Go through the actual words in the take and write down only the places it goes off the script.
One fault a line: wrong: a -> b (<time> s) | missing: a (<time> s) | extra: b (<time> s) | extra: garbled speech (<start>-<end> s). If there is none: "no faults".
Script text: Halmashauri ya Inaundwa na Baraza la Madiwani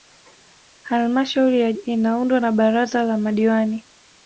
no faults